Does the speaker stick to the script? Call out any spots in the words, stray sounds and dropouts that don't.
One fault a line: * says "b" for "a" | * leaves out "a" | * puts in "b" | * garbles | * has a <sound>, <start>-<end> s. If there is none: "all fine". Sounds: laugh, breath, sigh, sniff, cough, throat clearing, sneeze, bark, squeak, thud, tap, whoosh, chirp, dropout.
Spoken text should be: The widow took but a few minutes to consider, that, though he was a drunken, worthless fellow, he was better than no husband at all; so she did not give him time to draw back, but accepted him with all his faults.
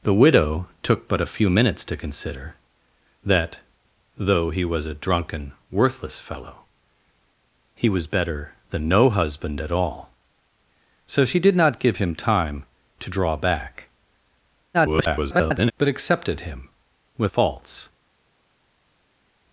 * garbles
* leaves out "all his"